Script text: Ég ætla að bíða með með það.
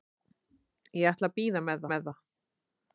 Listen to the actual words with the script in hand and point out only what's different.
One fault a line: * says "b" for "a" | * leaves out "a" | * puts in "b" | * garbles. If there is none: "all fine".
all fine